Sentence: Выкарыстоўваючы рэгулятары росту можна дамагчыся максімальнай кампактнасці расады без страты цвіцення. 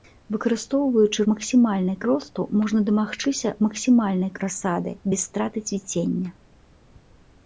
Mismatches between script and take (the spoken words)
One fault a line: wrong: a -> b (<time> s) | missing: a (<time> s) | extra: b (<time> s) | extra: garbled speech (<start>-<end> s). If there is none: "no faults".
wrong: рэгулятары -> максімальнай (1.3 s)
missing: кампактнасці (4.3 s)